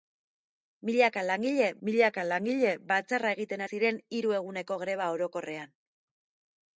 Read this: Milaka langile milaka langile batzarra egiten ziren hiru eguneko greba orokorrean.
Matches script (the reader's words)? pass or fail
pass